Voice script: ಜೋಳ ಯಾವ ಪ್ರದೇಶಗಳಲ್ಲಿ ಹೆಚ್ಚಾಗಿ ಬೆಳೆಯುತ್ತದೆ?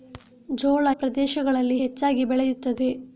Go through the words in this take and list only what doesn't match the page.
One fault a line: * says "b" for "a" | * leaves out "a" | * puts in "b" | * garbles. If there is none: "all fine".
* leaves out "ಯಾವ"